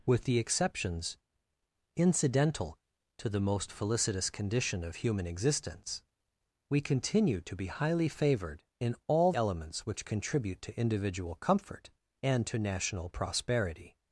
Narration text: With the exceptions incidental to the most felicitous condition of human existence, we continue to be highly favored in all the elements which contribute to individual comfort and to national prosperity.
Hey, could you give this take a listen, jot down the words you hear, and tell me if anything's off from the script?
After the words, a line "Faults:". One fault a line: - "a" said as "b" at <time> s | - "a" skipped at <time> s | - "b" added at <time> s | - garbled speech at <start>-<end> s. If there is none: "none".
With the exceptions incidental to the most felicitous condition of human existence, we continue to be highly favored in all elements which contribute to individual comfort and to national prosperity.
Faults:
- "the" skipped at 9.3 s